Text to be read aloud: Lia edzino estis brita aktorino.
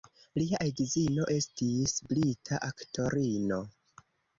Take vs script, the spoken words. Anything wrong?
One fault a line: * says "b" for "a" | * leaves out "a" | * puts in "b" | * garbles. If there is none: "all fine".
all fine